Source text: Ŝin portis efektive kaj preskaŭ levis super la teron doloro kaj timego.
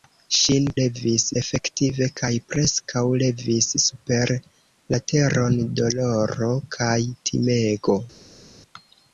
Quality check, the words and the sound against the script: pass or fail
fail